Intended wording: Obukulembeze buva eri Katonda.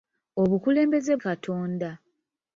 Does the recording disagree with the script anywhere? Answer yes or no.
yes